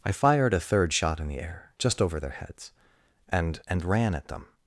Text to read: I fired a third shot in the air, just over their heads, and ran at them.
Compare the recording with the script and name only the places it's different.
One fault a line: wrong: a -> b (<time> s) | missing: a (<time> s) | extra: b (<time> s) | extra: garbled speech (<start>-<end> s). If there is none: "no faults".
extra: and (3.7 s)